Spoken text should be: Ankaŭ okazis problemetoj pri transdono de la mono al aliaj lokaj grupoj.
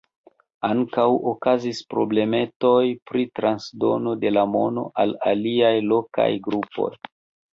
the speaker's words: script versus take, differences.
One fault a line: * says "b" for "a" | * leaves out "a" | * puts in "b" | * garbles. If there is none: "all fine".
all fine